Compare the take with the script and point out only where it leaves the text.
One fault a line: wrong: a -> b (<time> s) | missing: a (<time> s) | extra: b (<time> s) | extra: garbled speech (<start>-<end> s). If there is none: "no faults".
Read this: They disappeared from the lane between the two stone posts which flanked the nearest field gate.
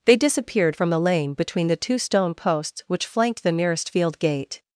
no faults